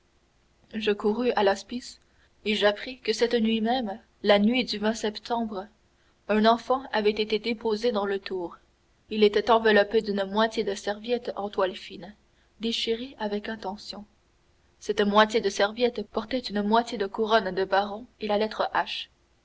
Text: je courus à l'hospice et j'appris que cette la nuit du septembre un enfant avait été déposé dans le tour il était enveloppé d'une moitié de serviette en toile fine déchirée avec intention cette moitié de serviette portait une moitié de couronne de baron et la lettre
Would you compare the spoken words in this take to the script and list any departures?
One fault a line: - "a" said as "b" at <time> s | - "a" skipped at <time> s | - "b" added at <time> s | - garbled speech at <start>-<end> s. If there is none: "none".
- "nuit même" added at 3.4 s